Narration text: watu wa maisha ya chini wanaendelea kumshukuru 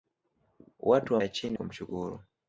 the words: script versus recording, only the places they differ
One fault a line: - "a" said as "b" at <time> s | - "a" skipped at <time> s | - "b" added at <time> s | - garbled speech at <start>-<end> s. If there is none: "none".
- "maisha" skipped at 1.2 s
- "wanaendelea" skipped at 1.6 s